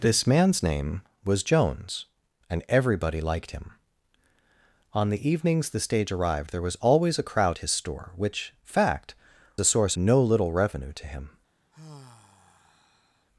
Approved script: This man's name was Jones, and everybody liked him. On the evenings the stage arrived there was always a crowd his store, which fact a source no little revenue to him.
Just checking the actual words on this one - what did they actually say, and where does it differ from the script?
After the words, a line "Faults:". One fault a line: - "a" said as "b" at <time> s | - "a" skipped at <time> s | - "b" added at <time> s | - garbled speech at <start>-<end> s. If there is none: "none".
This man's name was Jones, and everybody liked him. On the evenings the stage arrived there was always a crowd his store, which fact a source no little revenue to him.
Faults:
none